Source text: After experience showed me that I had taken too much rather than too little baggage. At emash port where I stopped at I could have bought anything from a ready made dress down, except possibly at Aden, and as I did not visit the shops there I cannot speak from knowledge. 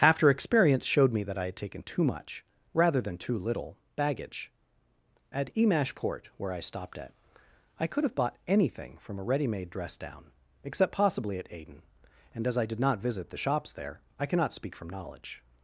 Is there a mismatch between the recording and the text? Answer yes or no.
no